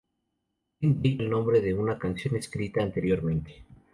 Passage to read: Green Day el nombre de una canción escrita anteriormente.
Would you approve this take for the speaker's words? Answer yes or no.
yes